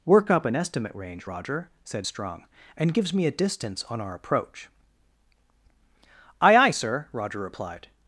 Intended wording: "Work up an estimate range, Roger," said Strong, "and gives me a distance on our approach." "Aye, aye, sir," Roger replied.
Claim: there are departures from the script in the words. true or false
false